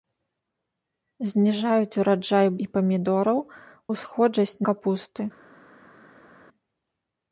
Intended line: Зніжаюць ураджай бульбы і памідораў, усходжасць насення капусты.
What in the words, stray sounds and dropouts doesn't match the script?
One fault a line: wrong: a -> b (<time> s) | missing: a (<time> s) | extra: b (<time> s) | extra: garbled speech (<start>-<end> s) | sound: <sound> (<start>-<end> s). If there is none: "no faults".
missing: бульбы (2.5 s)
missing: насення (4.6 s)